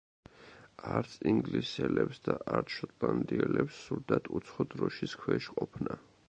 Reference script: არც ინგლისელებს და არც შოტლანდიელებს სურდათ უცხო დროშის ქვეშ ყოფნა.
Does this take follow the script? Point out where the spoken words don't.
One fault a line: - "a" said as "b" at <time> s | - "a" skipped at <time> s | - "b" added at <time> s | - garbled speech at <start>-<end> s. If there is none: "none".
none